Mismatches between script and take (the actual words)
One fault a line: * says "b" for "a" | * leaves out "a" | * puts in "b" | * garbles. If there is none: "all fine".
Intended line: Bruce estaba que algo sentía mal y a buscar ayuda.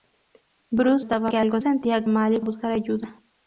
all fine